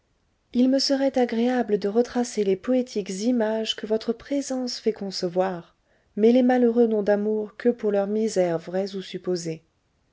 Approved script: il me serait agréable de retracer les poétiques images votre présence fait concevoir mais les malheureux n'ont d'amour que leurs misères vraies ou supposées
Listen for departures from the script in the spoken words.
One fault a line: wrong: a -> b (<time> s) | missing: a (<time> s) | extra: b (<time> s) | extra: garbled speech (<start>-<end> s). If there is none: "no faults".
extra: que (3.8 s)
extra: pour (7.7 s)